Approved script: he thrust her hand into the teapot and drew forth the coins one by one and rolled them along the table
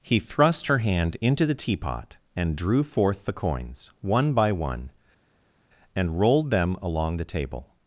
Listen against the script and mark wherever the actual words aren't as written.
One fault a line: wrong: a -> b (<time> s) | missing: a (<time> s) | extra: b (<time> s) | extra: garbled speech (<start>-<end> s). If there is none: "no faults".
no faults